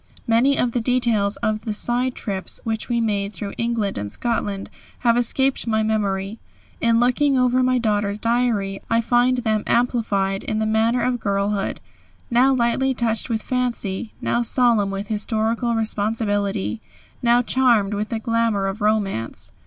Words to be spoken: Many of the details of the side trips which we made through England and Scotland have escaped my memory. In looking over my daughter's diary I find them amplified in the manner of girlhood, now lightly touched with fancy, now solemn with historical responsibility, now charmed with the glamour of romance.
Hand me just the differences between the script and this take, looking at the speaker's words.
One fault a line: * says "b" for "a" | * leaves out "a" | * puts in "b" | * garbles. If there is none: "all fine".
all fine